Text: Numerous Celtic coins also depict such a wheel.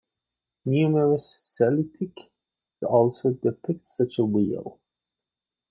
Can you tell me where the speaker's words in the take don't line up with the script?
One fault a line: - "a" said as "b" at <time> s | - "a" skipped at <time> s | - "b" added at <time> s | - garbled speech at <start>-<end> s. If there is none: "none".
- "coins" skipped at 2.3 s